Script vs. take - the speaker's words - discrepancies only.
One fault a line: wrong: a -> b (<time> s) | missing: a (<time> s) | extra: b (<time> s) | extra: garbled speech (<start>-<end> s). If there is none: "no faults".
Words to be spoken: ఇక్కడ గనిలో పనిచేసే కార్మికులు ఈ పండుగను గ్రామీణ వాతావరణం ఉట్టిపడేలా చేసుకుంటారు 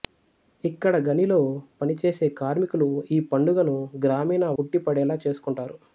missing: వాతావరణం (4.5 s)